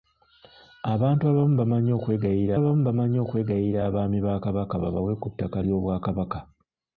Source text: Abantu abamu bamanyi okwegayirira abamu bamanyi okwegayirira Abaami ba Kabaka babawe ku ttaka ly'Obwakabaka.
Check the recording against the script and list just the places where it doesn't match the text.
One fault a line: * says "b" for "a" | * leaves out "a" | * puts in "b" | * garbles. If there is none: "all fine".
all fine